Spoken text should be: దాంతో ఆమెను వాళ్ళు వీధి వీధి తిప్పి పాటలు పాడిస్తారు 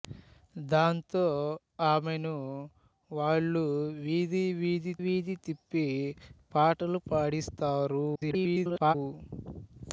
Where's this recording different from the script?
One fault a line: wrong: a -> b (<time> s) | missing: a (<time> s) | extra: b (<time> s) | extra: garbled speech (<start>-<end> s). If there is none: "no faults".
extra: వీధి (5.0 s)
extra: garbled speech (8.2-8.9 s)